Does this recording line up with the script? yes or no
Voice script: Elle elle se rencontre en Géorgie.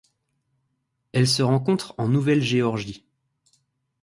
no